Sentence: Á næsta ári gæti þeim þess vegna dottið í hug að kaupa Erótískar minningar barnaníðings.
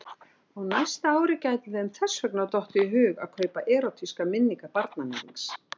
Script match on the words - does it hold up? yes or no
yes